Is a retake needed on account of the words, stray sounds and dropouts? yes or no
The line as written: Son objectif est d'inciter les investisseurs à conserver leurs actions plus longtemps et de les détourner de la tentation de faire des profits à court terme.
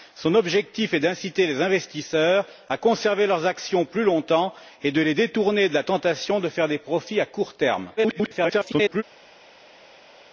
yes